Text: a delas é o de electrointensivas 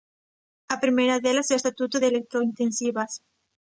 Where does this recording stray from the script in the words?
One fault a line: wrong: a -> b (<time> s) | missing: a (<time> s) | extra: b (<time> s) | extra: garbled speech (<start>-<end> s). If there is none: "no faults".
extra: primeira (0.8 s)
extra: estatuto (1.6 s)